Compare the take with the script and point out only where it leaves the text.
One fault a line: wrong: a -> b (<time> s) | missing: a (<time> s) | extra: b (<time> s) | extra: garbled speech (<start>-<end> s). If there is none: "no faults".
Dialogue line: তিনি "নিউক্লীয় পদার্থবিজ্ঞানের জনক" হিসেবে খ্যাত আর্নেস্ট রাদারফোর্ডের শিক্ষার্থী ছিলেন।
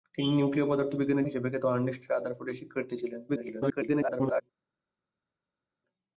missing: জনক (1.3 s)
extra: garbled speech (3.3-4.4 s)